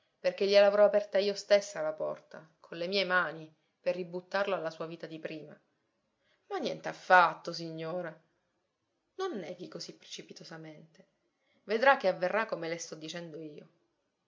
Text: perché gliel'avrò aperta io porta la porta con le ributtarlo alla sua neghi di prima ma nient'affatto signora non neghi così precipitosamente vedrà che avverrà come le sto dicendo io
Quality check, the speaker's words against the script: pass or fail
fail